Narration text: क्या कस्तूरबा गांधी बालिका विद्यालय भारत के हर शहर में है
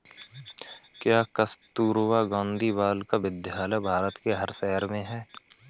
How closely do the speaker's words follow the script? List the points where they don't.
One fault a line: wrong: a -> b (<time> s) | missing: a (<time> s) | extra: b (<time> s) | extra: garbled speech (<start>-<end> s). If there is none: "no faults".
no faults